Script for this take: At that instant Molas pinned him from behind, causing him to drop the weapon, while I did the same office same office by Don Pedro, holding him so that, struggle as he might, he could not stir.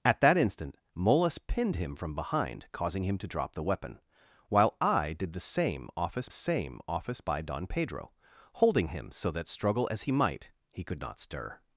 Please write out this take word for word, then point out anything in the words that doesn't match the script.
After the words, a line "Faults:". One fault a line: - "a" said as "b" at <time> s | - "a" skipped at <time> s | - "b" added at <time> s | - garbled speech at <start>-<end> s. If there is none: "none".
At that instant Molas pinned him from behind, causing him to drop the weapon, while I did the same office same office by Don Pedro, holding him so that, struggle as he might, he could not stir.
Faults:
none